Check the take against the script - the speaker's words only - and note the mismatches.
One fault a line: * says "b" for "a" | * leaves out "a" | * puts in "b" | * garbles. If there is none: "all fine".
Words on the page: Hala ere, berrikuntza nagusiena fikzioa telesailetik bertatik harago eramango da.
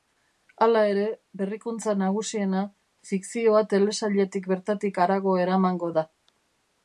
all fine